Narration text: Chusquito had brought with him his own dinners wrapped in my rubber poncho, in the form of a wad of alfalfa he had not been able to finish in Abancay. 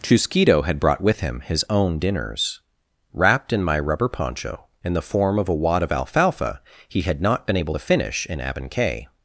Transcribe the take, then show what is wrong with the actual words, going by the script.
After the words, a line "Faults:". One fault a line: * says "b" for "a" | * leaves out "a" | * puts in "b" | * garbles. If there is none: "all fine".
Chusquito had brought with him his own dinners wrapped in my rubber poncho, in the form of a wad of alfalfa he had not been able to finish in Abancay.
Faults:
all fine